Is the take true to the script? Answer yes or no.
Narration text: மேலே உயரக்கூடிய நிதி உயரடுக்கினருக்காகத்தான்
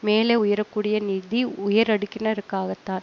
yes